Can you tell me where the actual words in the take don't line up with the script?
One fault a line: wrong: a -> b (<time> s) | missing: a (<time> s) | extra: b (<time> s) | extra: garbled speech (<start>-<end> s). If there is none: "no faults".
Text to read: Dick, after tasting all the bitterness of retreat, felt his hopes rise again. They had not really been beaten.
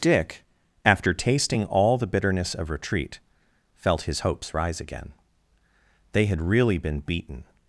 missing: not (6.4 s)